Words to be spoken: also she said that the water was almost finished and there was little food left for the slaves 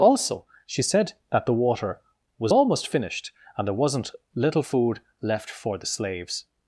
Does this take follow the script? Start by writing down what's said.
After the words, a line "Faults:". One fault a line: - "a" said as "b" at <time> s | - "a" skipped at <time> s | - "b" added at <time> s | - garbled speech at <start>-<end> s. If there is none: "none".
also she said that the water was almost finished and there wasn't little food left for the slaves
Faults:
- "was" said as "wasn't" at 3.7 s